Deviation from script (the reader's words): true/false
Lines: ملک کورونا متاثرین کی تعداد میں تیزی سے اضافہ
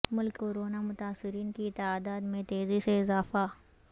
false